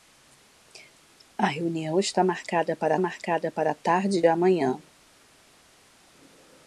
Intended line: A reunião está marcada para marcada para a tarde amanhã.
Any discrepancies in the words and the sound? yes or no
no